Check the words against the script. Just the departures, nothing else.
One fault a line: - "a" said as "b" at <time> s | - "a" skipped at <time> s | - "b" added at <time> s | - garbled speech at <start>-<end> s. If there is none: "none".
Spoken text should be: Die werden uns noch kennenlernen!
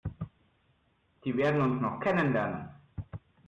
none